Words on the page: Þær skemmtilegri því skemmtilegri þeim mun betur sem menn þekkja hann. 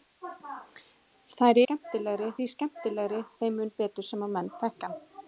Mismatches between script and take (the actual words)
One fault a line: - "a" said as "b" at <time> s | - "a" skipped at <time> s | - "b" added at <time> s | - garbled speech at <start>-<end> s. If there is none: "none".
none